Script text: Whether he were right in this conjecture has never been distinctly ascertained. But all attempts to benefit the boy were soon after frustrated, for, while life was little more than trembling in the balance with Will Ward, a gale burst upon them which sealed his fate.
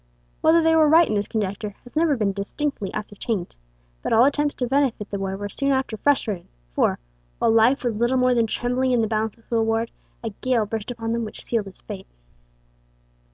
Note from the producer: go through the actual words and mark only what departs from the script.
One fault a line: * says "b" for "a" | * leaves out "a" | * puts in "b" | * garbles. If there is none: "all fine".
* says "they" for "he"